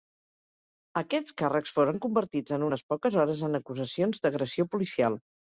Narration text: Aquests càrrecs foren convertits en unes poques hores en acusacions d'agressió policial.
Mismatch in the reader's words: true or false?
false